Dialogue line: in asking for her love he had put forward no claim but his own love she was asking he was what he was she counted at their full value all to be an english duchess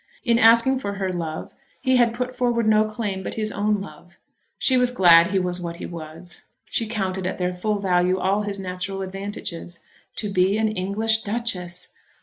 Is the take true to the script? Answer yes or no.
no